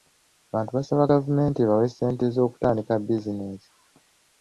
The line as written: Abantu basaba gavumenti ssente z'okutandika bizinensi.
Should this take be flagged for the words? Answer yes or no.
yes